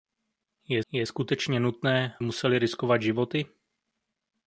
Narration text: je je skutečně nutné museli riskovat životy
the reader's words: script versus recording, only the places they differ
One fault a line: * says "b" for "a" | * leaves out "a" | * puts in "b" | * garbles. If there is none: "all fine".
all fine